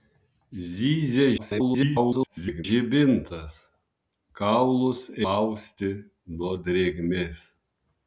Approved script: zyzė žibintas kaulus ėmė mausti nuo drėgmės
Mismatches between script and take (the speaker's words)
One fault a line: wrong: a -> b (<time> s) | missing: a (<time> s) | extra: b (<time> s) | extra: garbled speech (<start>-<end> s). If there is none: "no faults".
extra: garbled speech (1.4-2.6 s)
missing: ėmė (5.0 s)